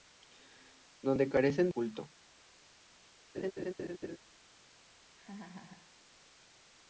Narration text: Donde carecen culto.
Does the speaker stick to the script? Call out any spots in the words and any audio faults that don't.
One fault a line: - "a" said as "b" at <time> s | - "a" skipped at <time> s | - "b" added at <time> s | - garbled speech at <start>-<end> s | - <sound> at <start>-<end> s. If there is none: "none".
- laugh at 3.3-4.2 s
- laugh at 5.2-6.0 s